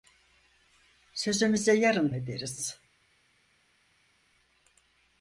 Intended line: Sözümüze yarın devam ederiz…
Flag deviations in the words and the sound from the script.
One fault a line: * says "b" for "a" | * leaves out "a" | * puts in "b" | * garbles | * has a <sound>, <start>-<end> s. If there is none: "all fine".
* leaves out "devam"